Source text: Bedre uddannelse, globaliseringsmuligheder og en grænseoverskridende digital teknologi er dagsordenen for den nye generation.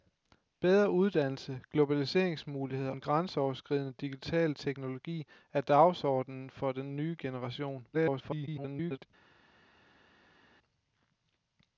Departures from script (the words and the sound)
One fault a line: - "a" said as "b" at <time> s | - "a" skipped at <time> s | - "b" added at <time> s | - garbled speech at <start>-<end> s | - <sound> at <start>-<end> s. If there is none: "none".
- "og" skipped at 2.9 s
- garbled speech at 7.9-9.1 s